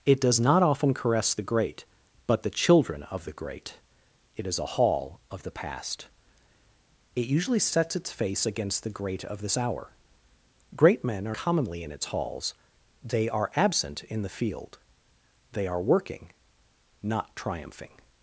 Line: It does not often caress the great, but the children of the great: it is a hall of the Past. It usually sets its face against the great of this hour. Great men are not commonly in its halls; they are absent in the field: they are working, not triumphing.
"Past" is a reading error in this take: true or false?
false